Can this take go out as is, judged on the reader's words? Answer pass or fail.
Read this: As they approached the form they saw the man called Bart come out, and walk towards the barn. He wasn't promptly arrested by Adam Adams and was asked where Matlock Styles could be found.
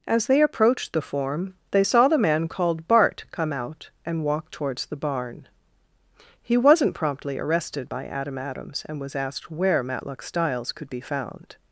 pass